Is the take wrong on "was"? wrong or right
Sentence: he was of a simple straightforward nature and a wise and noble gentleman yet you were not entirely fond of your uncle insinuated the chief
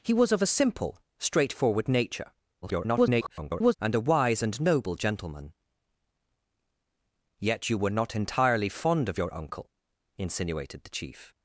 right